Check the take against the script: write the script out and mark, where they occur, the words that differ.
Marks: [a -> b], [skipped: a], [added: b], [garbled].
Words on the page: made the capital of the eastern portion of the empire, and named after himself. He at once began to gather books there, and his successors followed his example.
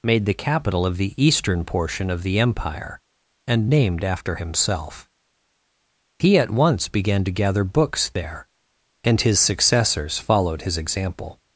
made the capital of the eastern portion of the empire, and named after himself. He at once began to gather books there, and his successors followed his example.